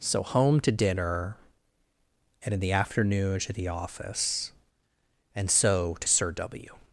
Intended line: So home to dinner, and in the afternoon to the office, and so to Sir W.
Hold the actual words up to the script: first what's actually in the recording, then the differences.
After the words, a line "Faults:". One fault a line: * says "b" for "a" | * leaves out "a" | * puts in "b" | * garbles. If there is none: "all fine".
So home to dinner, and in the afternoon to the office, and so to Sir W.
Faults:
all fine